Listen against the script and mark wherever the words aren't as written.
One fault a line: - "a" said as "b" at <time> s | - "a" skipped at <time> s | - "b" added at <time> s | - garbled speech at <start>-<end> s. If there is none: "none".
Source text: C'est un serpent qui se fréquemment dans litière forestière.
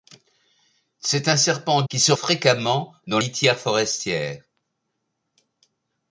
none